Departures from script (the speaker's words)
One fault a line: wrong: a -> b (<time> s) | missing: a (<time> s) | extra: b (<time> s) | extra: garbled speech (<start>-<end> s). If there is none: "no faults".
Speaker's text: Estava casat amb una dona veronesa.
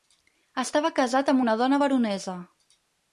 no faults